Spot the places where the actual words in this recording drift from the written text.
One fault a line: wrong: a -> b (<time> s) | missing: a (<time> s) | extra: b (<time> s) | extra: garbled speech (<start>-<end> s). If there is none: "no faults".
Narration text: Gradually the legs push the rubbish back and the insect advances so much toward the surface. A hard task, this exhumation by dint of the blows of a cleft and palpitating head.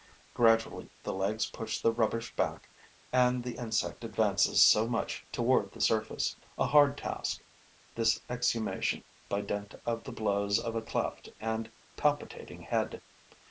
no faults